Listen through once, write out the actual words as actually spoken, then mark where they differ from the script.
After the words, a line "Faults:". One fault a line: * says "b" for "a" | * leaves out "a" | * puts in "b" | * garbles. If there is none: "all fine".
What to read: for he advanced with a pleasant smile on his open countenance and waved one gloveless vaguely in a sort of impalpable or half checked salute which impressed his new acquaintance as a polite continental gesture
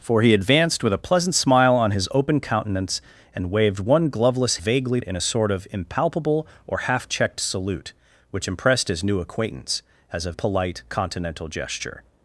for he advanced with a pleasant smile on his open countenance and waved one gloveless vaguely in a sort of impalpable or half checked salute which impressed his new acquaintance as a polite continental gesture
Faults:
all fine